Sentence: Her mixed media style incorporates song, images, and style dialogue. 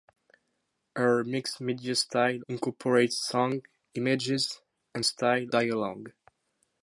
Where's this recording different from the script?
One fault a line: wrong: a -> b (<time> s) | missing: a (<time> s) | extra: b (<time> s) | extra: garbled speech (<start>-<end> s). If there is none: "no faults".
no faults